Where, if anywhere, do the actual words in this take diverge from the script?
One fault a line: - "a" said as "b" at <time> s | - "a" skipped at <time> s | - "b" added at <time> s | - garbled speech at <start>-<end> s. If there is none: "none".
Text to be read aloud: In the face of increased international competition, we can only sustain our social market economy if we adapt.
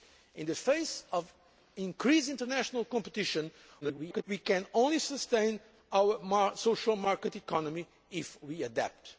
- garbled speech at 3.8-4.2 s